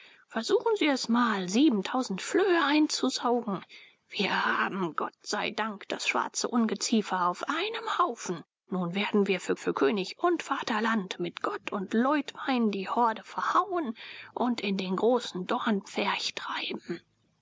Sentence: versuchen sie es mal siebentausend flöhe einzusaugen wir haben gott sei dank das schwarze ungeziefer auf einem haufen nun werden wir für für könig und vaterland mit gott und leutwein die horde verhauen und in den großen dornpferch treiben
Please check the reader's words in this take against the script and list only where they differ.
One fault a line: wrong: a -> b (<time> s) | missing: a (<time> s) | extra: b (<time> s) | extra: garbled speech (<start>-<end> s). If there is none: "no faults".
no faults